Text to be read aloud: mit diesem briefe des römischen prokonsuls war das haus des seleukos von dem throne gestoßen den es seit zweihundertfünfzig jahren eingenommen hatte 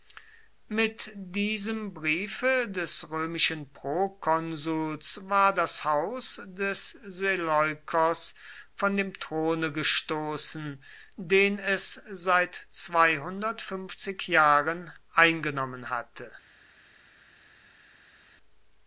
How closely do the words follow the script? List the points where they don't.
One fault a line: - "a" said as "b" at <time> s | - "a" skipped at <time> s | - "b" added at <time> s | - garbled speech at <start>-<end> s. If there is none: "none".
none